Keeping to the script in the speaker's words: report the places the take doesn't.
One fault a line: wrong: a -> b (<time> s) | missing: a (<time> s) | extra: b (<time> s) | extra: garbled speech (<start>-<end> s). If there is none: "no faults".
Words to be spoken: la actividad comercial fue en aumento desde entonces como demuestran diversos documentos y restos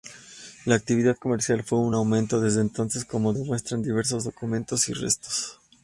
no faults